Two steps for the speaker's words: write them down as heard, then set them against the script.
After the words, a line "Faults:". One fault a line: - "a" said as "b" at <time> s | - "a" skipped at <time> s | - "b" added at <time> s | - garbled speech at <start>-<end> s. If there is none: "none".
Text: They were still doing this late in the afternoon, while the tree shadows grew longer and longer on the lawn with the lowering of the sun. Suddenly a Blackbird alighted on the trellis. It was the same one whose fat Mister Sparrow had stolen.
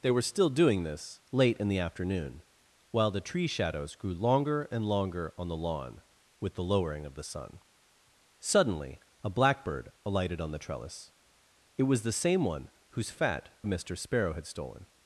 They were still doing this late in the afternoon, while the tree shadows grew longer and longer on the lawn with the lowering of the sun. Suddenly a Blackbird alighted on the trellis. It was the same one whose fat Mister Sparrow had stolen.
Faults:
none